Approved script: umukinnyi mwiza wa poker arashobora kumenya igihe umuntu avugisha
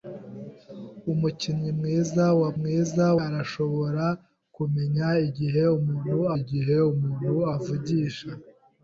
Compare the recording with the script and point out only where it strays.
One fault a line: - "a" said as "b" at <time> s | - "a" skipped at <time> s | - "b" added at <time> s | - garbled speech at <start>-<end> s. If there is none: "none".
- "poker" said as "mwiza" at 2.6 s
- "igihe umuntu" added at 6.4 s